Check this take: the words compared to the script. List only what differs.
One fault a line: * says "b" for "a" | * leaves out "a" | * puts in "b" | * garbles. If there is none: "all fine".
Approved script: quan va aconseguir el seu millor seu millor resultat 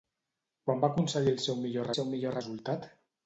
all fine